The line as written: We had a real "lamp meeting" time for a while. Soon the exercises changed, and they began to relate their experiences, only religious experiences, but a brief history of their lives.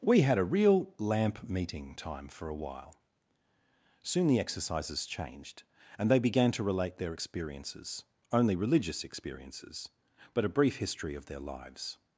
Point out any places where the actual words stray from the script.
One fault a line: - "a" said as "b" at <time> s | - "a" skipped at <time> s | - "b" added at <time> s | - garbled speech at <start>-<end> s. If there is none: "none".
none